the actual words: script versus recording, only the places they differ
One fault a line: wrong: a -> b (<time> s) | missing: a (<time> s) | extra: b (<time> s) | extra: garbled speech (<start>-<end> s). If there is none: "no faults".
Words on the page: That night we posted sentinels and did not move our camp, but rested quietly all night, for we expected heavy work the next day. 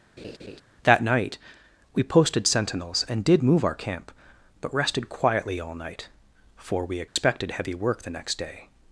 missing: not (3.4 s)